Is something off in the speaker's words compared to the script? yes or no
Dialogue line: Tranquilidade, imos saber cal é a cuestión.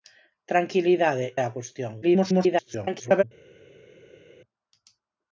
yes